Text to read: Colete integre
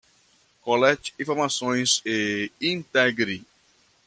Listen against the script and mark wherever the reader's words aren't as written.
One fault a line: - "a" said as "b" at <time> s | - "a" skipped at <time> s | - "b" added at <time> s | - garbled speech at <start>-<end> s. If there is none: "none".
- "informações e" added at 1.2 s